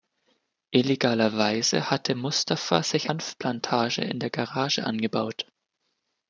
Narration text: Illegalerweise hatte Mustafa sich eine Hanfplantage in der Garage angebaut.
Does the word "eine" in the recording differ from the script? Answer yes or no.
yes